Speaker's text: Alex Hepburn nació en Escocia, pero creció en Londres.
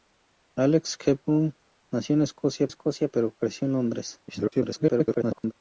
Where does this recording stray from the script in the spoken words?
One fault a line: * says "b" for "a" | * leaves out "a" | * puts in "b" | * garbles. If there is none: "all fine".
* puts in "Escocia"
* garbles